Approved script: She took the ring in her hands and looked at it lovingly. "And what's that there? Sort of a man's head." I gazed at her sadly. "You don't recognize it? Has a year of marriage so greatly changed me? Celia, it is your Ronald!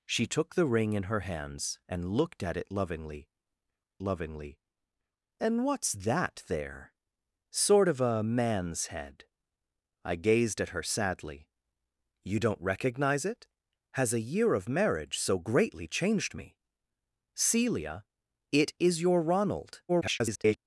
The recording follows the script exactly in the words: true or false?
false